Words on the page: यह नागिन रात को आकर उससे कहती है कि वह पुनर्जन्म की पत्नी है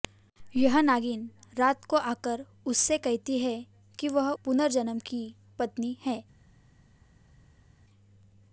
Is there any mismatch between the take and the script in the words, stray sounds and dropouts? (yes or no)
no